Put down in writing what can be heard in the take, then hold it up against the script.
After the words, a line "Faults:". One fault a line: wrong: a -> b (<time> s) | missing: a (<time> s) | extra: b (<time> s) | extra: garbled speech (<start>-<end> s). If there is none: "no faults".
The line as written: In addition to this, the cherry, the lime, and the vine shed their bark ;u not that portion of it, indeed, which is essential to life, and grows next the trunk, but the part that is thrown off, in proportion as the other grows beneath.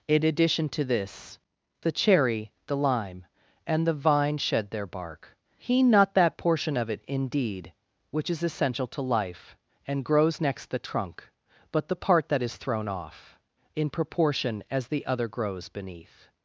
In addition to this, the cherry, the lime, and the vine shed their bark ;he not that portion of it, indeed, which is essential to life, and grows next the trunk, but the part that is thrown off, in proportion as the other grows beneath.
Faults:
wrong: u -> he (5.6 s)